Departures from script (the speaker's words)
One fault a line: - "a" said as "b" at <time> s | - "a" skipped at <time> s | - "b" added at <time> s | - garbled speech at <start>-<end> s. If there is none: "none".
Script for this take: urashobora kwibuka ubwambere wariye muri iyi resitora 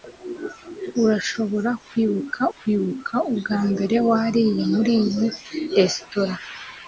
- "kwibuka" added at 2.5 s